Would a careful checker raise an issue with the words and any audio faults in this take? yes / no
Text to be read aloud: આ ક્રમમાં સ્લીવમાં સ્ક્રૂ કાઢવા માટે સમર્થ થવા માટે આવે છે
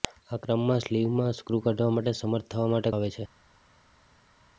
no